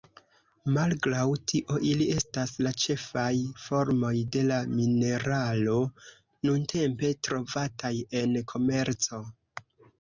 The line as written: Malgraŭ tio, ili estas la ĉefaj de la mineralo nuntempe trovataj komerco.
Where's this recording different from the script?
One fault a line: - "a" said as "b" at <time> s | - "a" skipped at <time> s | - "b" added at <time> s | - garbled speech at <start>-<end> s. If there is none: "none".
- "formoj" added at 3.7 s
- "en" added at 8.2 s